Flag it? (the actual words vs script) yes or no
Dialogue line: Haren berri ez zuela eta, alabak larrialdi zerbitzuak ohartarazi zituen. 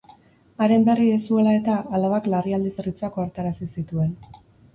no